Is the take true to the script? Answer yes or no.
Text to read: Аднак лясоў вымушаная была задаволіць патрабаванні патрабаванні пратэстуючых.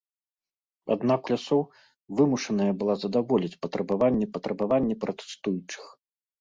yes